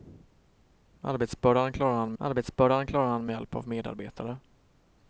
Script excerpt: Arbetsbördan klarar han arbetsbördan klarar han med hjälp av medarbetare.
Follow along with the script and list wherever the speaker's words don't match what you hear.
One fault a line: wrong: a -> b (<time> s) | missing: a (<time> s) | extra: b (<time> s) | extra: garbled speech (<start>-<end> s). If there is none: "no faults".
no faults